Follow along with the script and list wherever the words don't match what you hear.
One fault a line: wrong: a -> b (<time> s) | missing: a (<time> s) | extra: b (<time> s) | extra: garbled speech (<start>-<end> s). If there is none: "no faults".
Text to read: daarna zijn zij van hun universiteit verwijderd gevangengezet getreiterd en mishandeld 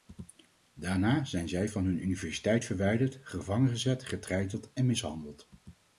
no faults